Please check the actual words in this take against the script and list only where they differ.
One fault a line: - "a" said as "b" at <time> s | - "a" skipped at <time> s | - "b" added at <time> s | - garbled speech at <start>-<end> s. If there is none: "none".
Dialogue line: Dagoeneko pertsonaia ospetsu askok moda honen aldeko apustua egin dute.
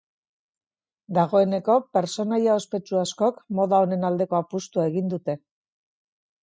none